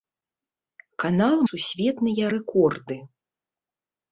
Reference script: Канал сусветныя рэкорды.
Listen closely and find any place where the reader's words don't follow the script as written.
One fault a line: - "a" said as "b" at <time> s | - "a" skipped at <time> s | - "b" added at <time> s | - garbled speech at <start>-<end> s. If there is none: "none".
none